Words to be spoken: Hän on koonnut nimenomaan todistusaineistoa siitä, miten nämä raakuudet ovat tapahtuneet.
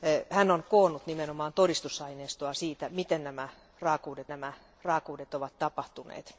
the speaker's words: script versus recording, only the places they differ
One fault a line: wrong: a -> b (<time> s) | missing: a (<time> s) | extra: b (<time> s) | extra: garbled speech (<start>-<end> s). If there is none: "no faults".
extra: nämä raakuudet (4.3 s)